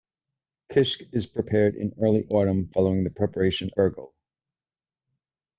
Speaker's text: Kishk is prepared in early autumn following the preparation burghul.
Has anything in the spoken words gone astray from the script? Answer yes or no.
no